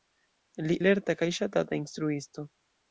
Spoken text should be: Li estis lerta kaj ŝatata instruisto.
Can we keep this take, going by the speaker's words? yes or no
no